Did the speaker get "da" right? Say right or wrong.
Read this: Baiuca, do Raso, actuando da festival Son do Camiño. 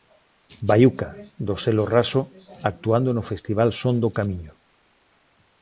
wrong